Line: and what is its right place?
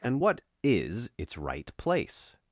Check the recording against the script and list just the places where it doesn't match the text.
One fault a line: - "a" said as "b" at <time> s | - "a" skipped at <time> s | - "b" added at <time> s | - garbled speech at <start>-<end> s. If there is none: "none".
none